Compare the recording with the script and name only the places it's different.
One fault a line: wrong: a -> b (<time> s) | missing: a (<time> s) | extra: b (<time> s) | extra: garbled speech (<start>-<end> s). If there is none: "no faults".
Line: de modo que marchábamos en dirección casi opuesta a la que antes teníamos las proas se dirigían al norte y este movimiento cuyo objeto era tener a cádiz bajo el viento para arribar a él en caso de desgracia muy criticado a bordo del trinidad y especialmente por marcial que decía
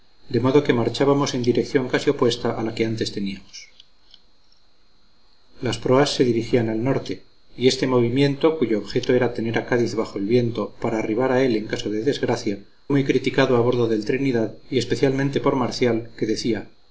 no faults